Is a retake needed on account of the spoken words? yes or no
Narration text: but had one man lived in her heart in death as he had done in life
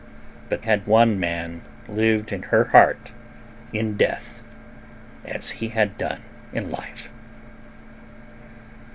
no